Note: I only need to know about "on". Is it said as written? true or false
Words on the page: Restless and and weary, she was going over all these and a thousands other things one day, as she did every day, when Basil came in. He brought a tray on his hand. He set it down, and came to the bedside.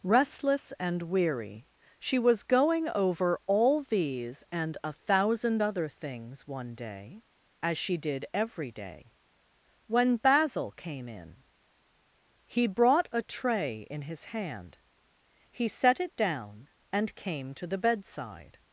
false